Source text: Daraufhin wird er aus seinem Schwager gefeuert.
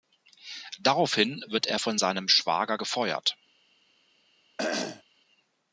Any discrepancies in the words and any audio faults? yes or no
yes